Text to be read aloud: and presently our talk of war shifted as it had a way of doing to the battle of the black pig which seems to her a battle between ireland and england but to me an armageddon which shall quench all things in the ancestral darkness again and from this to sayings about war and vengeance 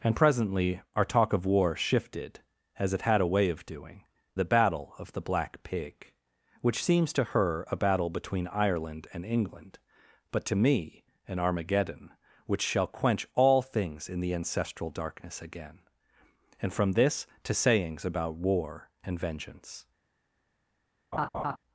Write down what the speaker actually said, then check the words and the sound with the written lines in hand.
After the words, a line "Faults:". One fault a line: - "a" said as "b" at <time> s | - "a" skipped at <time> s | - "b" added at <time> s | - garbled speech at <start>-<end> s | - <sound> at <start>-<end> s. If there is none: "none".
and presently our talk of war shifted as it had a way of doing the battle of the black pig which seems to her a battle between ireland and england but to me an armageddon which shall quench all things in the ancestral darkness again and from this to sayings about war and vengeance
Faults:
- "to" skipped at 4.0 s
- laugh at 21.1-21.6 s